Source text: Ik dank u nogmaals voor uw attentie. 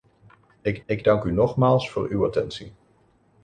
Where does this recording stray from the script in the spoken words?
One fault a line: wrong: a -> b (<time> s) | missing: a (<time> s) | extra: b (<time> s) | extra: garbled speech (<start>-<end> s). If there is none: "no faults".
extra: ik (0.9 s)